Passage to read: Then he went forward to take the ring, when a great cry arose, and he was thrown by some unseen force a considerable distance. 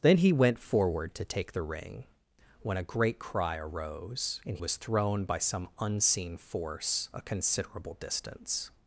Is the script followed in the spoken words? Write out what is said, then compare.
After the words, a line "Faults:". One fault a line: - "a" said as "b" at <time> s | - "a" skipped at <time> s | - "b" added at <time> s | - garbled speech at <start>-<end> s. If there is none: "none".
Then he went forward to take the ring, when a great cry arose, and was thrown by some unseen force a considerable distance.
Faults:
- "he" skipped at 4.6 s